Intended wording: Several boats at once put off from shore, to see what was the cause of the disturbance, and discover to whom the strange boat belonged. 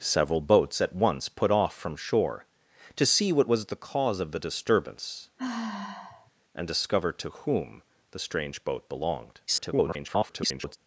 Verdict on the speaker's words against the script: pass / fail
fail